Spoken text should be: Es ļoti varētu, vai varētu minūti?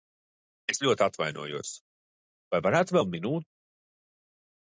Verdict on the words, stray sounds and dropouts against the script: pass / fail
fail